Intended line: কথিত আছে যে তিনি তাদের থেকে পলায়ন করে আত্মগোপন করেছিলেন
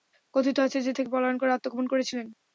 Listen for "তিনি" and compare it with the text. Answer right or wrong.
wrong